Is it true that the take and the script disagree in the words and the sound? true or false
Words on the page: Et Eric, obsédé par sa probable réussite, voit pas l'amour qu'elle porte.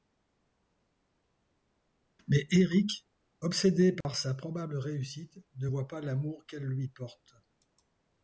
true